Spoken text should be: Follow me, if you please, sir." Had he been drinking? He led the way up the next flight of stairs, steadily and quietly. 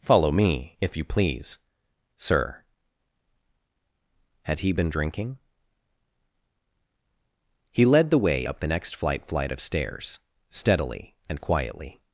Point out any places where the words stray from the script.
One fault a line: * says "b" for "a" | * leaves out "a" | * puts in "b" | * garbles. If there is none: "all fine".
* puts in "flight"